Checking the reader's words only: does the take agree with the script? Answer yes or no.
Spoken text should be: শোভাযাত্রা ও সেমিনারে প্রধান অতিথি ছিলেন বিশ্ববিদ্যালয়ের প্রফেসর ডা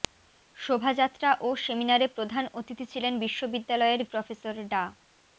yes